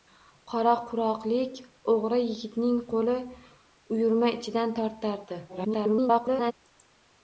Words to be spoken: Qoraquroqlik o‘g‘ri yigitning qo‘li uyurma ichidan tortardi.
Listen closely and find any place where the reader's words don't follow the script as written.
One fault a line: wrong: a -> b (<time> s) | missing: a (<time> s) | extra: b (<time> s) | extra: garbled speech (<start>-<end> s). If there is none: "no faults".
extra: garbled speech (5.5-6.5 s)